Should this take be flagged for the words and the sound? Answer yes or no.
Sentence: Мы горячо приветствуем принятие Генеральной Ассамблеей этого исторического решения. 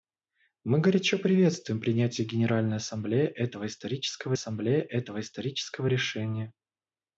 yes